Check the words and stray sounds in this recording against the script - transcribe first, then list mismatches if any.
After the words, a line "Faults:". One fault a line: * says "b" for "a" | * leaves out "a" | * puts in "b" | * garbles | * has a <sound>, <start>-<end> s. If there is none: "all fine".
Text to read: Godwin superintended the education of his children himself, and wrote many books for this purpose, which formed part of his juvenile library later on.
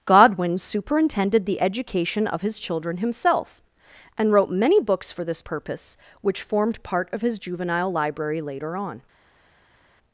Godwin superintended the education of his children himself, and wrote many books for this purpose, which formed part of his juvenile library later on.
Faults:
all fine